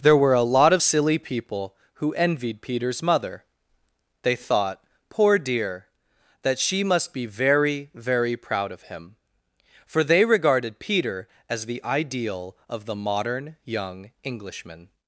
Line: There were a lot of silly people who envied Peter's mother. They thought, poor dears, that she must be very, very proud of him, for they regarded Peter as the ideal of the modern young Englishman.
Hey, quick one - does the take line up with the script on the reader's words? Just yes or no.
no